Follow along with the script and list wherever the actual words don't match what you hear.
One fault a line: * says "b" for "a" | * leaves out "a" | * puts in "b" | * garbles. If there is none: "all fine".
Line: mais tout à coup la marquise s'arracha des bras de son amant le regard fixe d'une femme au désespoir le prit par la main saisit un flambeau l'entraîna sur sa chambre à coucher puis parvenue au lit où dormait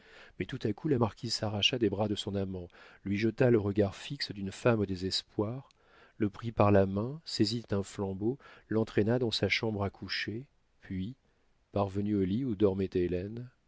* puts in "lui jeta"
* says "dans" for "sur"